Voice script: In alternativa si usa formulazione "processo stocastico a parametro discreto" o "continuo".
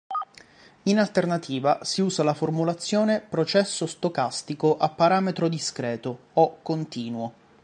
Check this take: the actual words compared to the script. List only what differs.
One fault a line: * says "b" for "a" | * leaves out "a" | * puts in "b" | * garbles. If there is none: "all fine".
* puts in "la"